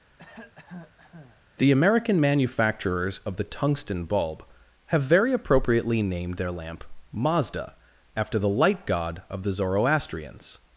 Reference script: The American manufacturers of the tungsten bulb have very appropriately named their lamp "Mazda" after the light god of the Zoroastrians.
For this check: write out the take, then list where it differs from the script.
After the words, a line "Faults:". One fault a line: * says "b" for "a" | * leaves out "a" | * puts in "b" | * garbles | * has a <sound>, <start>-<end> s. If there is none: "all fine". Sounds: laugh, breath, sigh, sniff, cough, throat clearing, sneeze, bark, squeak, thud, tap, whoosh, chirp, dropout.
The American manufacturers of the tungsten bulb have very appropriately named their lamp "Mazda" after the light god of the Zoroastrians.
Faults:
* has a cough, 0.2-1.4 s